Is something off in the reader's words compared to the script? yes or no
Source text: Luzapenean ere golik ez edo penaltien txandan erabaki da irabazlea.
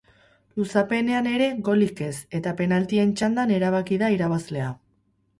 yes